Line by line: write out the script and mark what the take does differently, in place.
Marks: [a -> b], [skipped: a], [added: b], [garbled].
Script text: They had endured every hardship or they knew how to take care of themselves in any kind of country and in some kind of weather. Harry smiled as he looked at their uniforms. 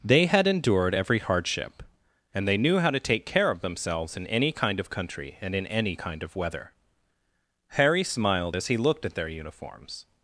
They had endured every hardship [or -> and] they knew how to take care of themselves in any kind of country and in [some -> any] kind of weather. Harry smiled as he looked at their uniforms.